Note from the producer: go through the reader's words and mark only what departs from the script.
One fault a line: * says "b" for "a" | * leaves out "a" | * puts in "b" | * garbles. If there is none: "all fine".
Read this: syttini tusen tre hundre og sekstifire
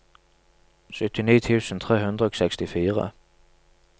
all fine